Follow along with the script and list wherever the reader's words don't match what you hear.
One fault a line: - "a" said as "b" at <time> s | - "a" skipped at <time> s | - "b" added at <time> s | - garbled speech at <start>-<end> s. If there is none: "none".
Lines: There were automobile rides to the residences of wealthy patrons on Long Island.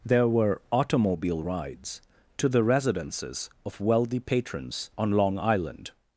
none